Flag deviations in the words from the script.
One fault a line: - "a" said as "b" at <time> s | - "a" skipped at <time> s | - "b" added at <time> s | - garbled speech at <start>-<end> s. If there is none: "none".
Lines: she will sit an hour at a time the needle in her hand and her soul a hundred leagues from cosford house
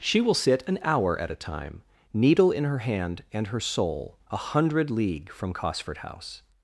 - "the" skipped at 1.8 s
- "leagues" said as "league" at 4.9 s